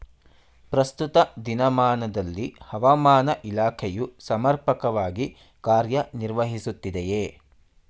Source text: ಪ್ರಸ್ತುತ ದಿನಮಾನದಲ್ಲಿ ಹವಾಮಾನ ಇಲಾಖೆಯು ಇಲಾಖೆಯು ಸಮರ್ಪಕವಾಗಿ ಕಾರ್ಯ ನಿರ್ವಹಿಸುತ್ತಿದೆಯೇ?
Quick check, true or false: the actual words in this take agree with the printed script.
false